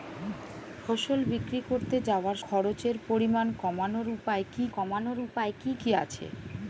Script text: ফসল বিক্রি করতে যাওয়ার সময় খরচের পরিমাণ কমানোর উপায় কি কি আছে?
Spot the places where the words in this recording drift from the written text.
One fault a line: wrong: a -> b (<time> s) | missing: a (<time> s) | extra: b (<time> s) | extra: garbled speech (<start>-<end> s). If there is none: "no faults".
missing: সময় (2.4 s)
extra: কমানোর উপায় কি (4.7 s)